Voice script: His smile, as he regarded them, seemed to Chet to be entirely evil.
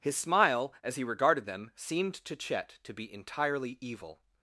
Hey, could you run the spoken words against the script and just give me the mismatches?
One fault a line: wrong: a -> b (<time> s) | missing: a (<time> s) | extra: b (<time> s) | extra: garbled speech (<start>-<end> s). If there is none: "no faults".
no faults